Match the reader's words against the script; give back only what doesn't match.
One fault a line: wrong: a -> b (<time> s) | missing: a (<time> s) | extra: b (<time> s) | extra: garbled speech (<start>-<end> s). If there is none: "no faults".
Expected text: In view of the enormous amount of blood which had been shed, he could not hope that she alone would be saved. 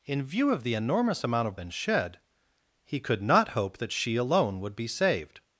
missing: blood which had (1.6 s)